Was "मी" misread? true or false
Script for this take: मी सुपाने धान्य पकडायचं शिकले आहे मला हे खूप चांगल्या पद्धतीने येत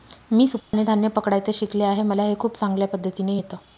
false